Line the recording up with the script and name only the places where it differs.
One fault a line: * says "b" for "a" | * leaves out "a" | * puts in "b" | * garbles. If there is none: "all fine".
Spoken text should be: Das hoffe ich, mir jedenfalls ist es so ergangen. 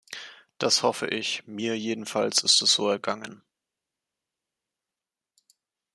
all fine